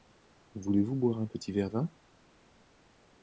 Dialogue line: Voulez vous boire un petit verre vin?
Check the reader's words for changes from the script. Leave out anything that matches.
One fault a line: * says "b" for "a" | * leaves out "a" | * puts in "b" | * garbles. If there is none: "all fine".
all fine